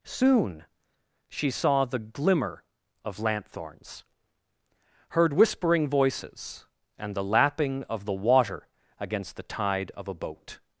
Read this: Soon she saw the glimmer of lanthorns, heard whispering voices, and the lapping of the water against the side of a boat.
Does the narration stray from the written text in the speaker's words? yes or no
yes